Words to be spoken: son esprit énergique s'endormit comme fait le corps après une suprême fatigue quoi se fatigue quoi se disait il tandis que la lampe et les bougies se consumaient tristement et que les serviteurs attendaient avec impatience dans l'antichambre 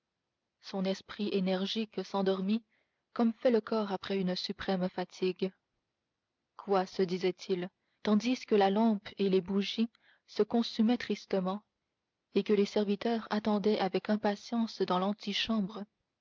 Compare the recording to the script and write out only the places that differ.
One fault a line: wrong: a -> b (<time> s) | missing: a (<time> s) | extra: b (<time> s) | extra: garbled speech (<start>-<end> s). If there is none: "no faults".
missing: fatigue quoi se (7.0 s)